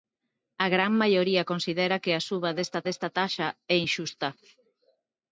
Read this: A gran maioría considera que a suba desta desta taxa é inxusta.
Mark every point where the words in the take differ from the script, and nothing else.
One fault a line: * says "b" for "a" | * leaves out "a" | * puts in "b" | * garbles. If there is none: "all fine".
all fine